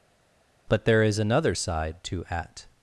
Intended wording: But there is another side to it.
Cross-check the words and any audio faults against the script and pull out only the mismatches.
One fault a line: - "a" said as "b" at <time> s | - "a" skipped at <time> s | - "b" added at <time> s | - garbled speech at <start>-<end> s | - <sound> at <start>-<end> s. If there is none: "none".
- "it" said as "at" at 2.3 s